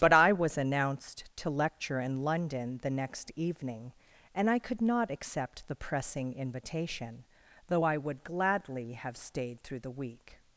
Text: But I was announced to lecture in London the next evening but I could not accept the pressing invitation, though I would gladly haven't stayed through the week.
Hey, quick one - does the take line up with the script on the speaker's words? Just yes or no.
no